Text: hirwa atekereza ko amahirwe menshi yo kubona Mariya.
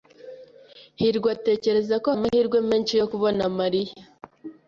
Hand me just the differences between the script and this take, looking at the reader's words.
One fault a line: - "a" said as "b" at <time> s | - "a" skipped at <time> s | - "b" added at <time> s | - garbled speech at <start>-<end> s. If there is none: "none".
none